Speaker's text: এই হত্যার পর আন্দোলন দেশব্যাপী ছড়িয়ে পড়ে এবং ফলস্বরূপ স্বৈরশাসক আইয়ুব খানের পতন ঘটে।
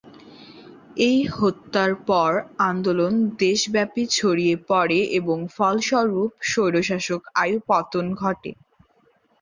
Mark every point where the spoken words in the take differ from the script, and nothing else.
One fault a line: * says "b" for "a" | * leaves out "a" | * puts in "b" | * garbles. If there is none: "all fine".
* leaves out "খানের"